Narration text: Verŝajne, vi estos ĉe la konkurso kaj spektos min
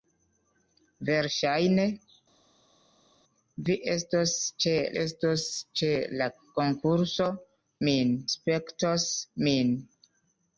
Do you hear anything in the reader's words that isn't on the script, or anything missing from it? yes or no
yes